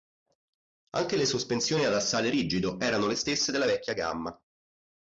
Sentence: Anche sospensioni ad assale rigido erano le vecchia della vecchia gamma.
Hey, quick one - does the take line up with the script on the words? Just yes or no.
no